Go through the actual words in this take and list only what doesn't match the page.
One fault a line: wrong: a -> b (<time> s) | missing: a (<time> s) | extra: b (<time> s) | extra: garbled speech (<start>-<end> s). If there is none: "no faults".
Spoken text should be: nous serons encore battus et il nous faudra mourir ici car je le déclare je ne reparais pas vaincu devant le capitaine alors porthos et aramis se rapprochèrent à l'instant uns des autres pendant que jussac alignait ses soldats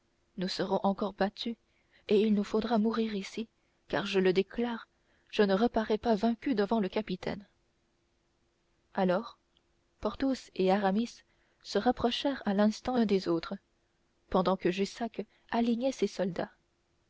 no faults